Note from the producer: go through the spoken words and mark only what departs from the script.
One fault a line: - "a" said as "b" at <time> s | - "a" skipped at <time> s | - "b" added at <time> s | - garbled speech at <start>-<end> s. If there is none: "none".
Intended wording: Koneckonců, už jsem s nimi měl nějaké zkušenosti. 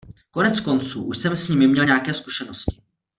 none